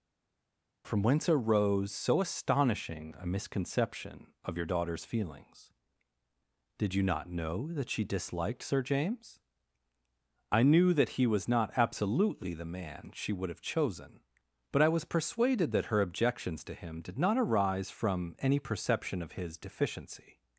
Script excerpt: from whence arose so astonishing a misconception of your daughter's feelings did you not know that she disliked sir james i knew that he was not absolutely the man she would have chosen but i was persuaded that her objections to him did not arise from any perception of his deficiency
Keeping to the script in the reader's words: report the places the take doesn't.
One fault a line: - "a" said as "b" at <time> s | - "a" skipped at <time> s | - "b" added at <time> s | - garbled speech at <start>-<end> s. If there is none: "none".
none